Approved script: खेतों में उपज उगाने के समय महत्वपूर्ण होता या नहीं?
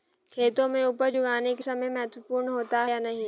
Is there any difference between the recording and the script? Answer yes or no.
no